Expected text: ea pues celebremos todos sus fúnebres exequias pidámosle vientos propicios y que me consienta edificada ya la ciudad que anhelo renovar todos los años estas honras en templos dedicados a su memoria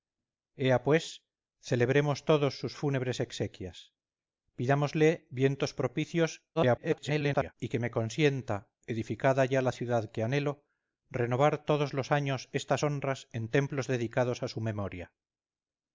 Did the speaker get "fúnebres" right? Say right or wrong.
right